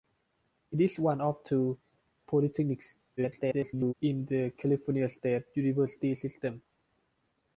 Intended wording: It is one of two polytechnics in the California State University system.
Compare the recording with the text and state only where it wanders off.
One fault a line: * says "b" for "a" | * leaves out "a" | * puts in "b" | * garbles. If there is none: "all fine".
* garbles